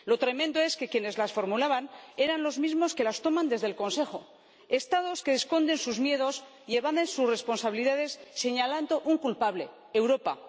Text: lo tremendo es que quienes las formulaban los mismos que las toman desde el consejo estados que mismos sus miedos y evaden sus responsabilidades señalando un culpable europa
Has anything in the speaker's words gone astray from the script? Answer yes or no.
yes